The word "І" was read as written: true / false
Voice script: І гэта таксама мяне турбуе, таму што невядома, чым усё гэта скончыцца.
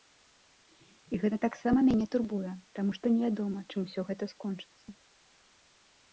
true